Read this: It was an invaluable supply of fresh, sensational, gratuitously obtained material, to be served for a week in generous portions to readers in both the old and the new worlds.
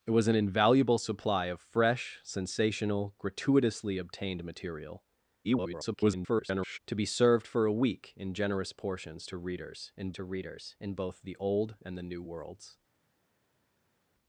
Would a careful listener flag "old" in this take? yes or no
no